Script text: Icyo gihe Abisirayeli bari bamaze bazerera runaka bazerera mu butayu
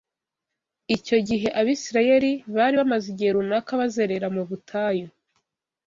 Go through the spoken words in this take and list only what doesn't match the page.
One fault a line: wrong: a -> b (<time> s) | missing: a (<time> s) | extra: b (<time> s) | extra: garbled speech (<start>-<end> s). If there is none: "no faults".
wrong: bazerera -> igihe (3.1 s)